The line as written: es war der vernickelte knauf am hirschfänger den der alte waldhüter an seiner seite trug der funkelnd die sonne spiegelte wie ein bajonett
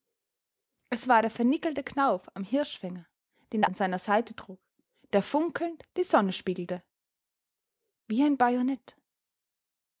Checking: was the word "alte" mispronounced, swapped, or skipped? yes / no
yes